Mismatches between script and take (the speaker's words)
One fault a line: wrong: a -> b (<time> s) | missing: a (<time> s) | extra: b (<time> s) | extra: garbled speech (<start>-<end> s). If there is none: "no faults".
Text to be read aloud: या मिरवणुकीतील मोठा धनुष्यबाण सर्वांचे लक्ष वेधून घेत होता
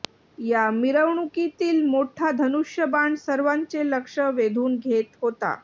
no faults